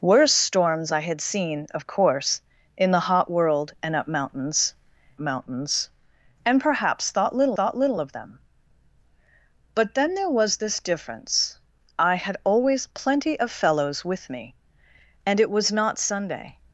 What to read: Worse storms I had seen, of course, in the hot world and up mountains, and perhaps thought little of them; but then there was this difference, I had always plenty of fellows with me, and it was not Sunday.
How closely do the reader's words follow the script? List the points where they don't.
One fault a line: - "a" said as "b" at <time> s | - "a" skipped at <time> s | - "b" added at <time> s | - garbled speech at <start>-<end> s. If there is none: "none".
- "mountains" added at 5.2 s
- "thought little" added at 7.5 s